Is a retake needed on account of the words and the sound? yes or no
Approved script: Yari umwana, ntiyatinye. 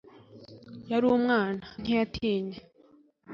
no